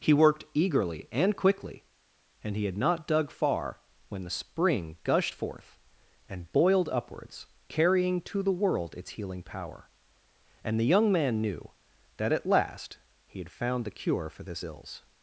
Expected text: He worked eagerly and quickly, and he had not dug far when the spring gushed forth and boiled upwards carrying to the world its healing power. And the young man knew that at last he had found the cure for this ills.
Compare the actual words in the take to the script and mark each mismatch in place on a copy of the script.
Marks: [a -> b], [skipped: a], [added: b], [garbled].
He worked eagerly and quickly, and he had not dug far when the spring gushed forth and boiled upwards carrying to the world its healing power. And the young man knew that at last he had found the cure for this ills.